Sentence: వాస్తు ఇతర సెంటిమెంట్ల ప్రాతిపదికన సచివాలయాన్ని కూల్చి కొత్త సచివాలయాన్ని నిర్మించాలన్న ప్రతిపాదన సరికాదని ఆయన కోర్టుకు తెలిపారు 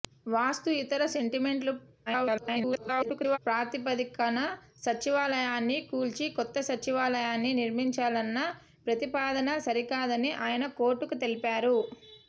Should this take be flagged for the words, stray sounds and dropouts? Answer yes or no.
yes